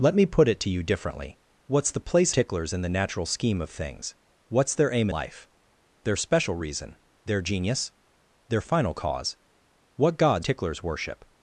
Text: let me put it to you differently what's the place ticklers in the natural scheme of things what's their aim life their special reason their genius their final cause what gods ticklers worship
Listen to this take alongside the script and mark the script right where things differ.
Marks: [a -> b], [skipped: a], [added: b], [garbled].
let me put it to you differently what's the place ticklers in the natural scheme of things what's their aim life their special reason their genius their final cause what gods ticklers worship